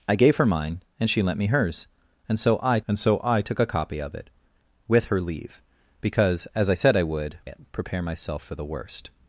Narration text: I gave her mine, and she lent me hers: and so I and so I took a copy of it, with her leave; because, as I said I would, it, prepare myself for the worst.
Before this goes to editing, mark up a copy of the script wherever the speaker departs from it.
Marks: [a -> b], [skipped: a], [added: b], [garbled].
I gave her mine, and she lent me hers: and so I and so I took a copy of it, with her leave; because, as I said I would, it, prepare myself for the worst.